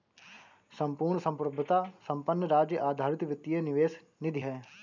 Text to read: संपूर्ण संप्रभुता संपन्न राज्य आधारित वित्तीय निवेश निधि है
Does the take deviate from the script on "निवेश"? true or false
false